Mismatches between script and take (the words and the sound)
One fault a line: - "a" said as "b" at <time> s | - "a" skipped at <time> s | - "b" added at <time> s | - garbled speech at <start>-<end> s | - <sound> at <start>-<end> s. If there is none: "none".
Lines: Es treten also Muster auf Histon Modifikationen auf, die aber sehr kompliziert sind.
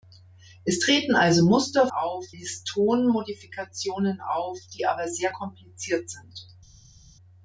none